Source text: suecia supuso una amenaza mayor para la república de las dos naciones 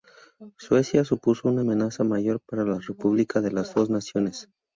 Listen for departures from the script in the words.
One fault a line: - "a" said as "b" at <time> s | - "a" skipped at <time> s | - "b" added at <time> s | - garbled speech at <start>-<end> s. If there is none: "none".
none